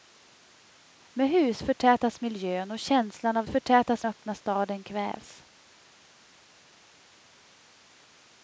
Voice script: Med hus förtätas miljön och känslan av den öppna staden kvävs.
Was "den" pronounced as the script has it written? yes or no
no